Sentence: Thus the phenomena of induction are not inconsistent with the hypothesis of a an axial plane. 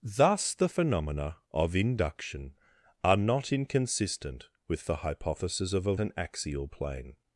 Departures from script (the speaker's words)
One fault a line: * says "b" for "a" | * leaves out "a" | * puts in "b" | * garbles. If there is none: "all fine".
all fine